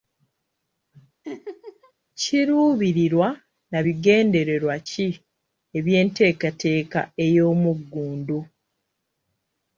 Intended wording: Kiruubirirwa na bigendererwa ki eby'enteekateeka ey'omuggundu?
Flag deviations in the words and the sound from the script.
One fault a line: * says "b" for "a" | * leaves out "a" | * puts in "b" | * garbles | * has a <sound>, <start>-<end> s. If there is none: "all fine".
* has a laugh, 1.2-1.9 s